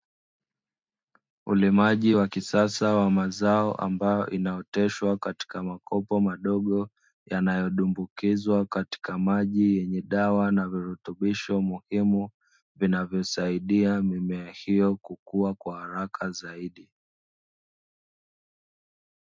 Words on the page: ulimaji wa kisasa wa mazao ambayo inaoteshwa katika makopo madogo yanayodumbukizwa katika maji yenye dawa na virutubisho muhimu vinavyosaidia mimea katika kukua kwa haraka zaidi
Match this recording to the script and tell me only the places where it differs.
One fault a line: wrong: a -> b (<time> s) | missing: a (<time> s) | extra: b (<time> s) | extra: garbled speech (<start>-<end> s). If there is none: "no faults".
wrong: katika -> hiyo (14.5 s)